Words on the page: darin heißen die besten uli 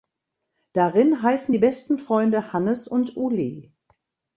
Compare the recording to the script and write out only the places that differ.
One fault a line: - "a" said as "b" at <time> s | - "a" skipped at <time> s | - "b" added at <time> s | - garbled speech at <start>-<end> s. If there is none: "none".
- "freunde hannes und" added at 2.0 s